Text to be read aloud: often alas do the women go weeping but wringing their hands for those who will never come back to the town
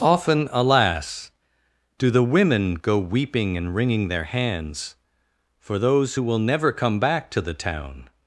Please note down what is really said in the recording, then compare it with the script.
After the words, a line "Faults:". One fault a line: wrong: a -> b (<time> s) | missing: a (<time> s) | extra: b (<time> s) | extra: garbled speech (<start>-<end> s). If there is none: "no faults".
often alas do the women go weeping and wringing their hands for those who will never come back to the town
Faults:
wrong: but -> and (3.6 s)